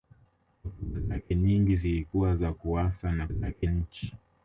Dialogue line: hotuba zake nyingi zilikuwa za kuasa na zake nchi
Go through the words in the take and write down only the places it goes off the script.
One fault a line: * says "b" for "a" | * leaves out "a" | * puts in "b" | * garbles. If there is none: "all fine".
all fine